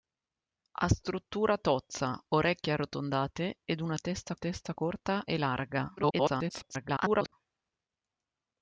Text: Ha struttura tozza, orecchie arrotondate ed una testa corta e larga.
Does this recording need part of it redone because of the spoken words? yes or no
yes